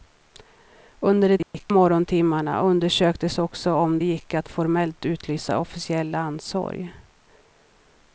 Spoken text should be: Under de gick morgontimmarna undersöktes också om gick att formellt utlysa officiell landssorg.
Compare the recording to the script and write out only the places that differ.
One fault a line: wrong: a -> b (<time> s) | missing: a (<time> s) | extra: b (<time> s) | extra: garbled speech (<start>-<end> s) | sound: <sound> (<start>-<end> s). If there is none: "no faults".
sound: dropout (1.4-1.5 s)